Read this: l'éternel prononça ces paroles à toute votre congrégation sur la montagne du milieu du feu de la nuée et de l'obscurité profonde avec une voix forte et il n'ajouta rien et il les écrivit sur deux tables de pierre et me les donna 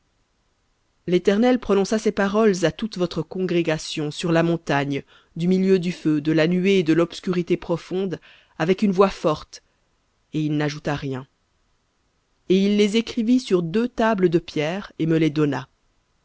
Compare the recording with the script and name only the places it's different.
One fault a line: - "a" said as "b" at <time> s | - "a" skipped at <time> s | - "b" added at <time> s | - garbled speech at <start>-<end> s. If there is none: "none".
none